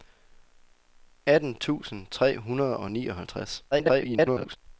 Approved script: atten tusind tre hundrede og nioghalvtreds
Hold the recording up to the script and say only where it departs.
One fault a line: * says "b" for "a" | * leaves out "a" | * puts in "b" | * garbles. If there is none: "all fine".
* garbles